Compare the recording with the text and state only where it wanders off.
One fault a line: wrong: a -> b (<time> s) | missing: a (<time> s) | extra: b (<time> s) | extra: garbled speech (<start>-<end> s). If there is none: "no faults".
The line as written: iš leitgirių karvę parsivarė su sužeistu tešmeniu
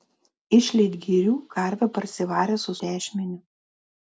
missing: sužeistu (2.8 s)